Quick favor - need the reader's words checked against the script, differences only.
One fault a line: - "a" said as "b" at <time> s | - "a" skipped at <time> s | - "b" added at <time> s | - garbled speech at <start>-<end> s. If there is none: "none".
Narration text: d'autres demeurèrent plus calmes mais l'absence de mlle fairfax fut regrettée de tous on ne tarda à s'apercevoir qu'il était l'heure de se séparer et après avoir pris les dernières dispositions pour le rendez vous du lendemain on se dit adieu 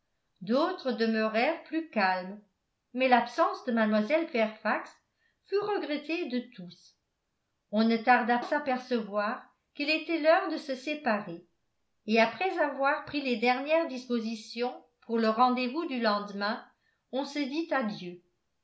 none